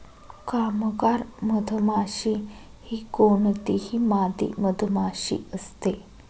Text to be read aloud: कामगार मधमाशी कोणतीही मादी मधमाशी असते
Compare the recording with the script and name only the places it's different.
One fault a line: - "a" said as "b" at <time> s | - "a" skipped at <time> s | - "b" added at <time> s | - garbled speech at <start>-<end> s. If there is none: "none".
- "ही" added at 2.9 s